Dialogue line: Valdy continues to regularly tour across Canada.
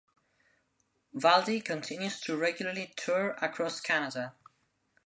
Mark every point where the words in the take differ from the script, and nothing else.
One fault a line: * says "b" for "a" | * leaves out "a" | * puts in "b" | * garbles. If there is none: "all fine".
all fine